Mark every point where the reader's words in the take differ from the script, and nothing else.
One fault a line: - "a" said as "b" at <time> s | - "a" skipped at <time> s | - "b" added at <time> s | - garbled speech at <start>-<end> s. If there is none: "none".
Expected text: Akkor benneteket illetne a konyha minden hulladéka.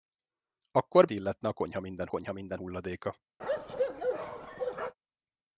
- "benneteket" skipped at 1.1 s
- "konyha minden" added at 2.1 s